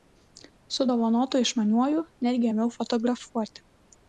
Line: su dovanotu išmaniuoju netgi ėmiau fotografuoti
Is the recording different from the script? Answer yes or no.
no